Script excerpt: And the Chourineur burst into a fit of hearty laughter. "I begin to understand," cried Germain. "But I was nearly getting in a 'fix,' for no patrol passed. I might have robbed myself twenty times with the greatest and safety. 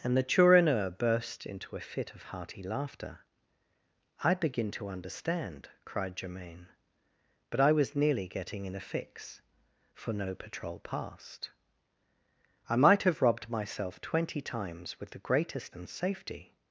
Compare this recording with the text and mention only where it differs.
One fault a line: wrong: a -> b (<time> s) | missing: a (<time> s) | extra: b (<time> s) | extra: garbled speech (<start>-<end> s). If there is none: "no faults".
no faults